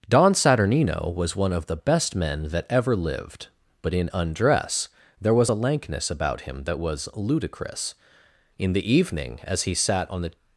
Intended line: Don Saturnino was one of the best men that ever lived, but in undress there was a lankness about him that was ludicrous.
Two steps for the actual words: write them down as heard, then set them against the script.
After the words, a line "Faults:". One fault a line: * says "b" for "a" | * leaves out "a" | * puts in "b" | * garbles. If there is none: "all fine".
Don Saturnino was one of the best men that ever lived, but in undress there was a lankness about him that was ludicrous. In the evening, as he sat on the
Faults:
* puts in "In the evening as he sat on the"